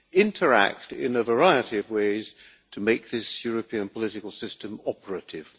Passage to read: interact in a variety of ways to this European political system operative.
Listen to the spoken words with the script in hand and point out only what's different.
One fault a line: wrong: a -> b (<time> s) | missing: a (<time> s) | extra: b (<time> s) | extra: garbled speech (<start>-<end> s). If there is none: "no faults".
extra: make (2.8 s)